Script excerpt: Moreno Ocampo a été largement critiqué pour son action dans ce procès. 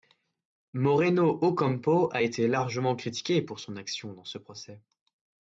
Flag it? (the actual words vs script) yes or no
no